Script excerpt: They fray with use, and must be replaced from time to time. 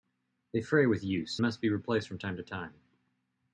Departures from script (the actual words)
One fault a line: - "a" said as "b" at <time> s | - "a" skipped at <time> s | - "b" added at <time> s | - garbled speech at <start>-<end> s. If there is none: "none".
- "and" skipped at 1.4 s